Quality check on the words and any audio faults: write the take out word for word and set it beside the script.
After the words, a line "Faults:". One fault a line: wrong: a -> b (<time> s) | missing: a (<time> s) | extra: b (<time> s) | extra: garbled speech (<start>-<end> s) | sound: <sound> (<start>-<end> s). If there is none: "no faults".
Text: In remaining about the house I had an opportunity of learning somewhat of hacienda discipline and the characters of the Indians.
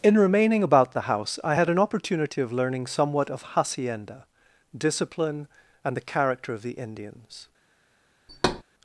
In remaining about the house I had an opportunity of learning somewhat of hacienda discipline and the character of the Indians.
Faults:
wrong: characters -> character (6.0 s)
sound: thud (8.3-8.6 s)